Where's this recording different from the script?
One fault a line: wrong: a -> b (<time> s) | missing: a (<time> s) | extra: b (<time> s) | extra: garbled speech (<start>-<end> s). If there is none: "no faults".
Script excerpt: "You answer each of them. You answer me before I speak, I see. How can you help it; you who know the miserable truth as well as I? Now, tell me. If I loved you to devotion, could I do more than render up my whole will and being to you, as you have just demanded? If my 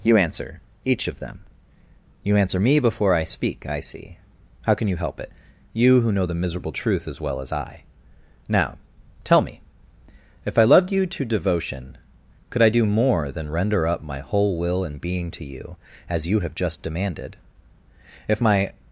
no faults